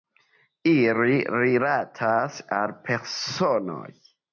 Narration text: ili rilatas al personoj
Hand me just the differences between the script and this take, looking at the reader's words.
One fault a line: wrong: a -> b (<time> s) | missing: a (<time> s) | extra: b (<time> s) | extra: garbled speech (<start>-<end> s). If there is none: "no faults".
no faults